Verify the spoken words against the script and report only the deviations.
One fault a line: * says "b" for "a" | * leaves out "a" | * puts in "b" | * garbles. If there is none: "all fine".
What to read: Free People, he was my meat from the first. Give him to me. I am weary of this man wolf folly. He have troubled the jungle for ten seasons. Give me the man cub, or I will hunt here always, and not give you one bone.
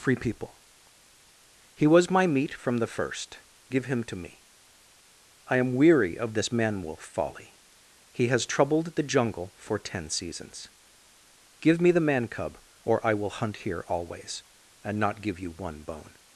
* says "has" for "have"